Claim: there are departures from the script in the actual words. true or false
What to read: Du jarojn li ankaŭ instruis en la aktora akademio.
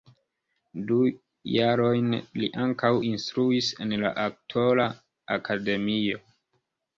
false